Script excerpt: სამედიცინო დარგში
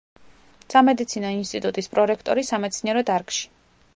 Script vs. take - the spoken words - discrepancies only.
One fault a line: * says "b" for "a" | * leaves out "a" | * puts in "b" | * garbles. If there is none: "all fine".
* puts in "ინსტიტუტის პრორექტორი სამეცნიერო"